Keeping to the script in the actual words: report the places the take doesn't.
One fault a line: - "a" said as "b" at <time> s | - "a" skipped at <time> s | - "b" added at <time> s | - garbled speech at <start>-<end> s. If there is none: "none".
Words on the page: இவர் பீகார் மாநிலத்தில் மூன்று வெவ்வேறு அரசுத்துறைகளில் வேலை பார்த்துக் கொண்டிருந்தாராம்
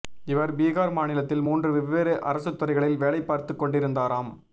none